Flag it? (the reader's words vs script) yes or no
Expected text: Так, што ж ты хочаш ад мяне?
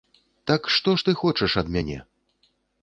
no